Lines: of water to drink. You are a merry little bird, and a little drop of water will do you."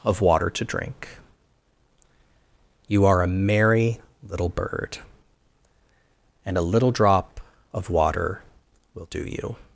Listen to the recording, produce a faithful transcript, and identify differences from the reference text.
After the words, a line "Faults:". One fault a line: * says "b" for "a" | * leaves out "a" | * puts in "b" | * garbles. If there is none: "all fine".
of water to drink. You are a merry little bird, and a little drop of water will do you."
Faults:
all fine